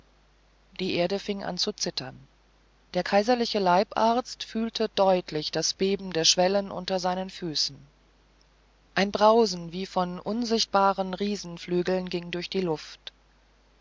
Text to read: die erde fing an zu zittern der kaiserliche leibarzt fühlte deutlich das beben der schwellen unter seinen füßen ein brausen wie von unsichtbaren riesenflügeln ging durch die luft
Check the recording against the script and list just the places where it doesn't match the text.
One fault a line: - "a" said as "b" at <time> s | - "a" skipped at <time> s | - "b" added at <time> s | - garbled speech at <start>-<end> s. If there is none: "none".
none